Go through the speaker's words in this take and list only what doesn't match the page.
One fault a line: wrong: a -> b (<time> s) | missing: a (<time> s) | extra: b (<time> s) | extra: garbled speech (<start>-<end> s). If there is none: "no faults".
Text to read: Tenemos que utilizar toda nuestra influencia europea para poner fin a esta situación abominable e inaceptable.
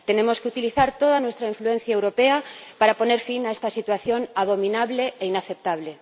no faults